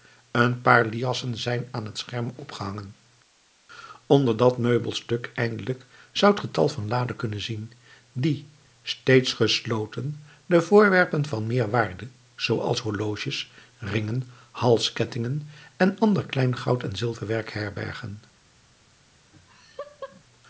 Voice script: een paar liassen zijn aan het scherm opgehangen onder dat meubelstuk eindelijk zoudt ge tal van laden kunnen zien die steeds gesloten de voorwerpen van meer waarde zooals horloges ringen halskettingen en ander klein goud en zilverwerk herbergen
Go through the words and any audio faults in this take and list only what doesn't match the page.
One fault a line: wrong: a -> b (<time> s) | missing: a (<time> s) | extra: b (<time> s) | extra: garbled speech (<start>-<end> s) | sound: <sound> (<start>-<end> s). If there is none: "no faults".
sound: laugh (19.3-20.2 s)